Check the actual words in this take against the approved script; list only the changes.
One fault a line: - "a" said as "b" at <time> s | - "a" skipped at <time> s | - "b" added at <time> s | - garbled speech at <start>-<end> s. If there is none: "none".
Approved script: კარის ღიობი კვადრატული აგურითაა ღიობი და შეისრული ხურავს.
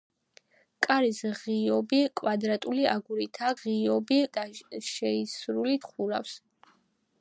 none